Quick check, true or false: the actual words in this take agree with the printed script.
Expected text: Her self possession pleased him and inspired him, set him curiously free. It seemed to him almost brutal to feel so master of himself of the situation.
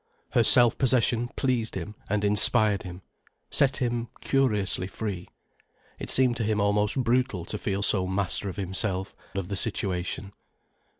true